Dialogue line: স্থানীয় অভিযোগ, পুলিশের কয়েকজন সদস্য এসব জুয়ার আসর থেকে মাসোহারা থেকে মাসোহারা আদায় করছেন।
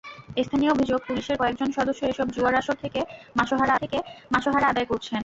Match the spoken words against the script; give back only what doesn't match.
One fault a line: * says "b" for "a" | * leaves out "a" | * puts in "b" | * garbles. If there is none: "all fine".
all fine